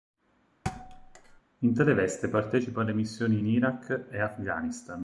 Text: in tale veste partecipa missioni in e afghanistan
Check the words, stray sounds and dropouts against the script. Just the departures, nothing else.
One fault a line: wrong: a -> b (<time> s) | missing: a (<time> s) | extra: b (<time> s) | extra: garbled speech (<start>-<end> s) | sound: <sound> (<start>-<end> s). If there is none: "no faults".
sound: thud (0.6-1.4 s)
extra: alle (2.8 s)
extra: iraq (3.5 s)